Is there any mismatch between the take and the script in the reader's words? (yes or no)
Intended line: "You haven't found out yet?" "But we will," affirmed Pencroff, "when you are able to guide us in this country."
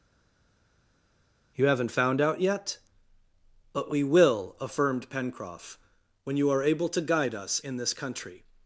no